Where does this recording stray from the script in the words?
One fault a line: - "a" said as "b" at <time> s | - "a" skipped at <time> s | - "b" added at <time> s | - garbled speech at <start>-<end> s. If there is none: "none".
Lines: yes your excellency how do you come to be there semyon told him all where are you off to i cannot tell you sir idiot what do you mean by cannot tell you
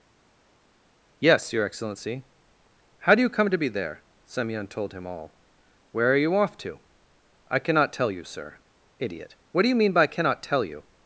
none